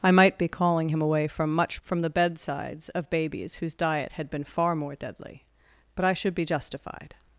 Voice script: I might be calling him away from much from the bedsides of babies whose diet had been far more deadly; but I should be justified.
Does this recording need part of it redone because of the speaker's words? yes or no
no